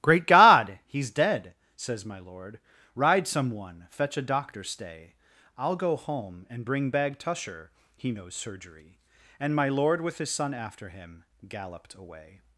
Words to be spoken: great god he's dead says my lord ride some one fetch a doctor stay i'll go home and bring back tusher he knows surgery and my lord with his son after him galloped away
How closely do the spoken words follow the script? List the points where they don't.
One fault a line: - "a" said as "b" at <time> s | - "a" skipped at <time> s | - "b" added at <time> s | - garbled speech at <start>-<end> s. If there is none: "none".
- "back" said as "bag" at 6.9 s